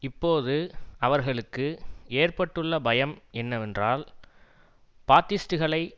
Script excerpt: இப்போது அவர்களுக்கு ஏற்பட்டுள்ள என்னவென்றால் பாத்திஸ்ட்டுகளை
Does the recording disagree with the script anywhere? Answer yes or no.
yes